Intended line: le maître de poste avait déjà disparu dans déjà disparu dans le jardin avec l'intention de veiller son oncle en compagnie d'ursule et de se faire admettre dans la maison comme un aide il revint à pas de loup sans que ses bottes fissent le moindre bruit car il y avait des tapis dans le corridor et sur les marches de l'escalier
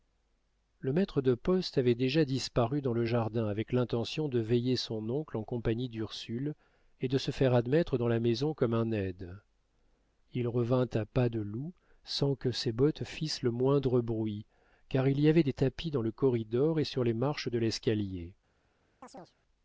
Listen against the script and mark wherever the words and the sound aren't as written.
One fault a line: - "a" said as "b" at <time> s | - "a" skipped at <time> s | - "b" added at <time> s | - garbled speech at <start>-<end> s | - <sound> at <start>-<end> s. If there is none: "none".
- "déjà disparu dans" skipped at 2.9 s
- chirp at 19.0-19.4 s